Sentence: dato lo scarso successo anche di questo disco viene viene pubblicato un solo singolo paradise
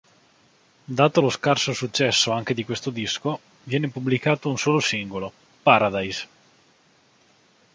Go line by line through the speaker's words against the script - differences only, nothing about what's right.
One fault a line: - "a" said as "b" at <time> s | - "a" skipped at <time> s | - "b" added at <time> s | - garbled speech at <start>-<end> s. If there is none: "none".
- "viene" skipped at 3.9 s